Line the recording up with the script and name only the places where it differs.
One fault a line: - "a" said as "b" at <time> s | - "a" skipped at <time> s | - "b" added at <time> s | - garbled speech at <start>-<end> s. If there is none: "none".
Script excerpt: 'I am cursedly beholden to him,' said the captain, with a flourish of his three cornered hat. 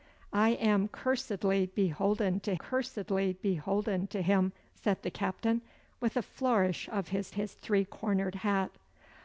- "cursedly beholden to" added at 2.5 s
- "his" added at 7.3 s